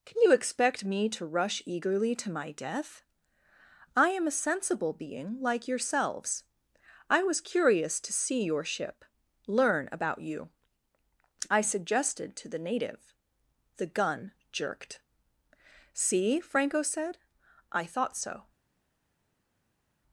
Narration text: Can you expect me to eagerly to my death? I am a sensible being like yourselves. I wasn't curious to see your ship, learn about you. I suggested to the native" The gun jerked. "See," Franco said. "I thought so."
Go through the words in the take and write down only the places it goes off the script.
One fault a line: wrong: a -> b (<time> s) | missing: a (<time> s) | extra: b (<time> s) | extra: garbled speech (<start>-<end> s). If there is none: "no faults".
extra: rush (1.2 s)
wrong: wasn't -> was (7.2 s)